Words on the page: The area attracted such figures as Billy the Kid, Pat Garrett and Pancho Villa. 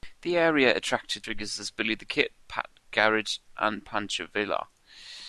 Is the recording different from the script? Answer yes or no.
yes